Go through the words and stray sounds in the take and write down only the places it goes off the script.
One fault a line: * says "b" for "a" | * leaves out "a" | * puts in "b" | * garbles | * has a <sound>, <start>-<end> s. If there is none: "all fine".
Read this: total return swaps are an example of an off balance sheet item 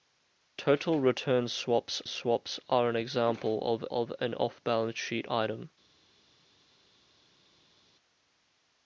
* puts in "swaps"
* puts in "of"